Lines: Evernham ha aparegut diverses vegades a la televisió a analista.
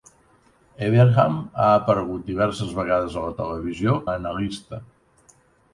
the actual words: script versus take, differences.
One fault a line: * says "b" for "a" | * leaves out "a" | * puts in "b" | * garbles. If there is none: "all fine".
all fine